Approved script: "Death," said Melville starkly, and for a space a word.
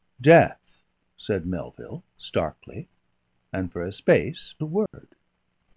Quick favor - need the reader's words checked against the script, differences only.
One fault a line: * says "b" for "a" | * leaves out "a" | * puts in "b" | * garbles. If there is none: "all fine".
all fine